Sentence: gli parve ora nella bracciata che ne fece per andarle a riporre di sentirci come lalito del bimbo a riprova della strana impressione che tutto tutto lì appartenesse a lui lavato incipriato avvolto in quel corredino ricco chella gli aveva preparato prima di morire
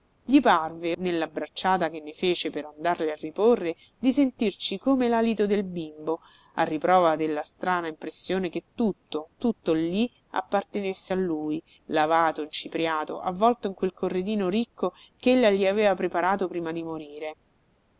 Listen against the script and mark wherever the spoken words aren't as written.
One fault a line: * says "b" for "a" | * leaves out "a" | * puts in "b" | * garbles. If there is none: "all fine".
* leaves out "ora"